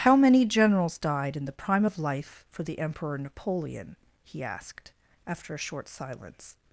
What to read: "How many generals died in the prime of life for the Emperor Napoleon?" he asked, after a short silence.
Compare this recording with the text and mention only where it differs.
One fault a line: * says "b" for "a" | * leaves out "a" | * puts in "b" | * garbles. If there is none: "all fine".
all fine